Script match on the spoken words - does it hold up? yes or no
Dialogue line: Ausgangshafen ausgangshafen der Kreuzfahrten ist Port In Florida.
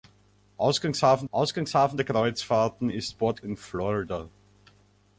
yes